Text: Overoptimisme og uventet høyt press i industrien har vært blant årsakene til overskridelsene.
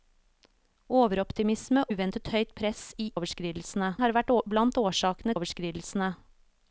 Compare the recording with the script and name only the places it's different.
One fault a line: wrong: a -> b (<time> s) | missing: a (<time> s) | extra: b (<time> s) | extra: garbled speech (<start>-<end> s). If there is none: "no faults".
missing: og (1.8 s)
wrong: industrien -> overskridelsene (3.1 s)
missing: til (5.4 s)